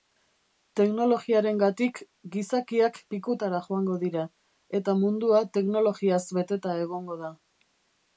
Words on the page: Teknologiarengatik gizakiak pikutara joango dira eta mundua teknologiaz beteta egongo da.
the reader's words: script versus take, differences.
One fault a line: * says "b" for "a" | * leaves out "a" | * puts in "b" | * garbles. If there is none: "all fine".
all fine